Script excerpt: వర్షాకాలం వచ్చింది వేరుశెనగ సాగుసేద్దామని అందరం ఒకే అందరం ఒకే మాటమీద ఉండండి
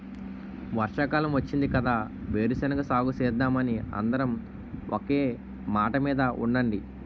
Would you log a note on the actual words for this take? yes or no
yes